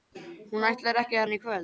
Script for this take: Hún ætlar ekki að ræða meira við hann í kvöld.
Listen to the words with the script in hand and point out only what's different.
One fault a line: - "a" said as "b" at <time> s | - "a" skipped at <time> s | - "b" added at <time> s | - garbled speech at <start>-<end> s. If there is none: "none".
- "ræða meira við" skipped at 1.3 s